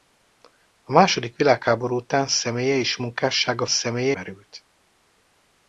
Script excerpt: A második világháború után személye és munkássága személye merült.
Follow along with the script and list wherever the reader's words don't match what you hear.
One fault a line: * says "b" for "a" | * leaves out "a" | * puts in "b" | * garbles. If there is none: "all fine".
all fine